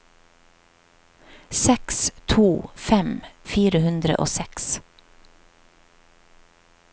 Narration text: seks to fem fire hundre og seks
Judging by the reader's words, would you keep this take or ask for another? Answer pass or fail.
pass